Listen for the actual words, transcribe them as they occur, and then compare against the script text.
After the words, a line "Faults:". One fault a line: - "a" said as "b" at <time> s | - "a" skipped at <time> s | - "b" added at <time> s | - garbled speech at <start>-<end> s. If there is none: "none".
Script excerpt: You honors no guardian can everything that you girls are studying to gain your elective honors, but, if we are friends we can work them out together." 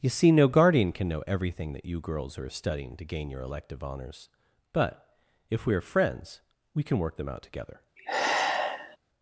You see no guardian can know everything that you girls are studying to gain your elective honors, but, if we are friends we can work them out together."
Faults:
- "honors" said as "see" at 0.1 s
- "know" added at 1.1 s